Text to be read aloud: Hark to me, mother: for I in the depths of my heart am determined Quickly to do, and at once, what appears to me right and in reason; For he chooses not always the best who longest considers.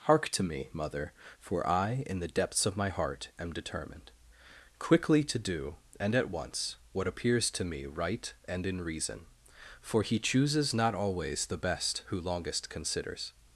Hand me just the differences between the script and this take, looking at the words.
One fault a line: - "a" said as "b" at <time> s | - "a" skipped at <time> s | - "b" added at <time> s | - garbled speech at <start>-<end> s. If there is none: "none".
none